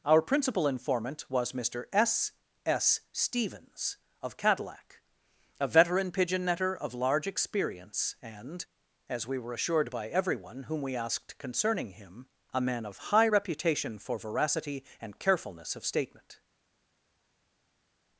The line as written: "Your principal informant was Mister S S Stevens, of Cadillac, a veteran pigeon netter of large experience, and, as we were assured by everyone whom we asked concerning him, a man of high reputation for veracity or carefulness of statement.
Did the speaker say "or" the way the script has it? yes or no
no